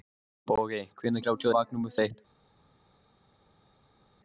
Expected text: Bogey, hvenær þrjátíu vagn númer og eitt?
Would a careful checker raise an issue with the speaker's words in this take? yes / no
no